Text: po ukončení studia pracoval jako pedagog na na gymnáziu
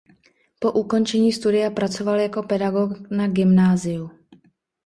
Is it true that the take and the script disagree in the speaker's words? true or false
true